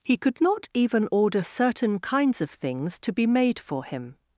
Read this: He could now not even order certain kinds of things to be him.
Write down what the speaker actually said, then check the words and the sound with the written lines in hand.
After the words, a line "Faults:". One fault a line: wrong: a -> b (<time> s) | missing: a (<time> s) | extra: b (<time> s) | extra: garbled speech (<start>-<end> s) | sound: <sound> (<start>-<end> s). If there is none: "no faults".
He could not even order certain kinds of things to be made for him.
Faults:
missing: now (0.4 s)
extra: made for (3.3 s)